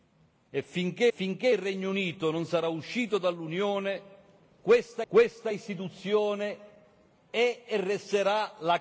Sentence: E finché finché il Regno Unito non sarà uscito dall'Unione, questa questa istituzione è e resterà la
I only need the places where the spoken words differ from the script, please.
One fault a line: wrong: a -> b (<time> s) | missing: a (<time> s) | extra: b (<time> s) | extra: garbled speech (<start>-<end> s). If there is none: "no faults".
no faults